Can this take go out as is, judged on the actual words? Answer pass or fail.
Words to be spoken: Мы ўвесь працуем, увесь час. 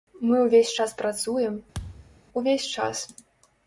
fail